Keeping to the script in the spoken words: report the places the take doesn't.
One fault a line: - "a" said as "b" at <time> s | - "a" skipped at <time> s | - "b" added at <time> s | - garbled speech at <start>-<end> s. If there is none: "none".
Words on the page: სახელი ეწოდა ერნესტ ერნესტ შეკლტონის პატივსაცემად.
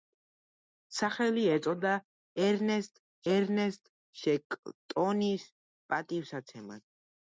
none